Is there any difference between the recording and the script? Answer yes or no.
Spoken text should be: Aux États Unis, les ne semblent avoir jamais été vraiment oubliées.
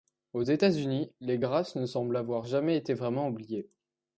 yes